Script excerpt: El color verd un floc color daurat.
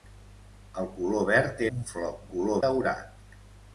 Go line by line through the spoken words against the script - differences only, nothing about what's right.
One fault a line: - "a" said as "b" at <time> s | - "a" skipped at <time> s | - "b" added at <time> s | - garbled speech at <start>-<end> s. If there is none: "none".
none